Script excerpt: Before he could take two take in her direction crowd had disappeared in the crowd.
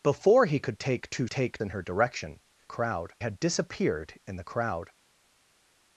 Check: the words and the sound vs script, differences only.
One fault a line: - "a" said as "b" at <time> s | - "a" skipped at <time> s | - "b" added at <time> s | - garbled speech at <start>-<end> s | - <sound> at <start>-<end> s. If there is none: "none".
none